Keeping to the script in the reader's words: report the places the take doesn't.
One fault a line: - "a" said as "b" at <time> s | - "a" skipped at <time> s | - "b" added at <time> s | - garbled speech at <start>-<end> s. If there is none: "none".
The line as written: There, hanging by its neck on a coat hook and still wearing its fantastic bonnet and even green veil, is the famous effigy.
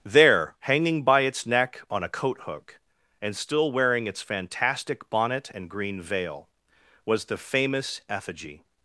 - "even" skipped at 5.7 s
- "is" said as "was" at 7.1 s